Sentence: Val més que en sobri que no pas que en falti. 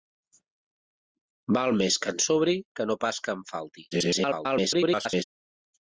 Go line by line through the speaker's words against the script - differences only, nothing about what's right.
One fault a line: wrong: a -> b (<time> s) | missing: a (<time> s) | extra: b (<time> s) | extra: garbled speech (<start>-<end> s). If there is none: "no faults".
extra: garbled speech (3.9-5.2 s)